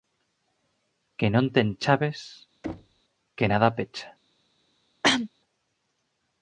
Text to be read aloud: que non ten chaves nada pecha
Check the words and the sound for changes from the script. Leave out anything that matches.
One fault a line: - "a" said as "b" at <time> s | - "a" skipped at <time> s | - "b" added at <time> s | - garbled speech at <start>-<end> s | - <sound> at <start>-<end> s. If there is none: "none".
- thud at 2.6-3.0 s
- "que" added at 3.4 s
- cough at 5.0-5.3 s